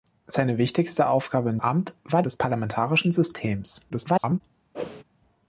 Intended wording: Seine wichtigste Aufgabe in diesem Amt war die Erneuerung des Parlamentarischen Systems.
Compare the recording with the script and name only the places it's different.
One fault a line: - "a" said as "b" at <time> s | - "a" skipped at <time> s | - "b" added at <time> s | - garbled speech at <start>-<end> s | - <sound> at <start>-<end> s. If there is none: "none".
- "diesem" skipped at 1.6 s
- "die Erneuerung" skipped at 2.2 s
- garbled speech at 3.9-4.4 s
- whoosh at 4.7-5.0 s